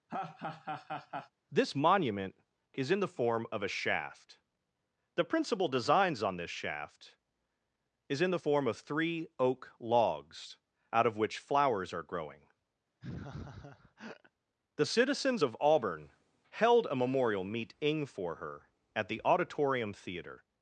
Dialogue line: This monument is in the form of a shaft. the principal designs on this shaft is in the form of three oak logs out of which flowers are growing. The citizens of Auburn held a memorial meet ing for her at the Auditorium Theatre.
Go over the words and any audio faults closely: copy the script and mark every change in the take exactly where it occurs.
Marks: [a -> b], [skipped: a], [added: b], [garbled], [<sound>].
[laugh] This monument is in the form of a shaft. the principal designs on this shaft is in the form of three oak logs out of which flowers are growing. [laugh] The citizens of Auburn held a memorial meet ing for her at the Auditorium Theatre.